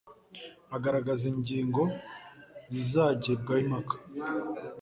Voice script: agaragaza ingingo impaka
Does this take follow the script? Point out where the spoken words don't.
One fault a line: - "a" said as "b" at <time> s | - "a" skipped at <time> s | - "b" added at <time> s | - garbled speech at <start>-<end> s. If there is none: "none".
- "zizagibwaho" added at 2.7 s